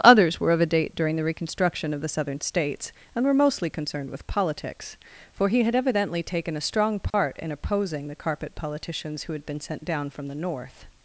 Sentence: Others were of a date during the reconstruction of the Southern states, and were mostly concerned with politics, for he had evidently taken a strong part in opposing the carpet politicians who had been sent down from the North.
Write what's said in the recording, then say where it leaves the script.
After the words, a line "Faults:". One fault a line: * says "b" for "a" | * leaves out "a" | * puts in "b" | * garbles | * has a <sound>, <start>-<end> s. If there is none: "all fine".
Others were of a date during the reconstruction of the Southern states, and were mostly concerned with politics, for he had evidently taken a strong part in opposing the carpet politicians who had been sent down from the North.
Faults:
* has a dropout, 7.1-7.1 s